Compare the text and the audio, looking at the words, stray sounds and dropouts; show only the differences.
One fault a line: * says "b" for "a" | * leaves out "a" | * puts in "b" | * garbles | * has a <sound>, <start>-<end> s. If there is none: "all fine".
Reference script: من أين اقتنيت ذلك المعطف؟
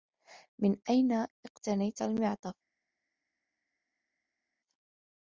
* leaves out "ذلك"